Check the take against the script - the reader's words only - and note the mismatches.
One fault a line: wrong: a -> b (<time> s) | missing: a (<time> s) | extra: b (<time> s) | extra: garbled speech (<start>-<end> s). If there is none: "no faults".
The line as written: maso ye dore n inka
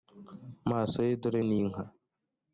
no faults